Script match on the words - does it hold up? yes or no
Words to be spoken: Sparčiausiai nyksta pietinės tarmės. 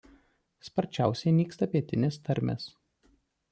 yes